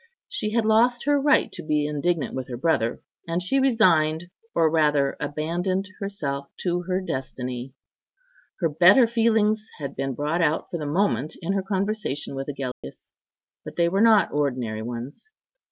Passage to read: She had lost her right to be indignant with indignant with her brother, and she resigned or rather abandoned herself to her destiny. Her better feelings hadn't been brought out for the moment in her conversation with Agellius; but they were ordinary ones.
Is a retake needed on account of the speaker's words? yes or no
yes